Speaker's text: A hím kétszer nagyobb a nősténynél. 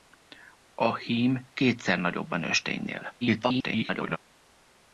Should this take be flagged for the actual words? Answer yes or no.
yes